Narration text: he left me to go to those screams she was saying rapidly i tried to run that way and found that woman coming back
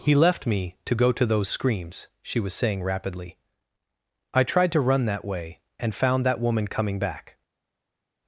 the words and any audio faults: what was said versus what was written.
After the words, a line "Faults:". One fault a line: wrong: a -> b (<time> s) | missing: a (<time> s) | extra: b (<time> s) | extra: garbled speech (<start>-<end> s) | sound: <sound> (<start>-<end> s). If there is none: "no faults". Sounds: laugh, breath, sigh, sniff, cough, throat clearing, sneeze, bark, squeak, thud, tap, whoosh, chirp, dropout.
he left me to go to those screams she was saying rapidly i tried to run that way and found that woman coming back
Faults:
no faults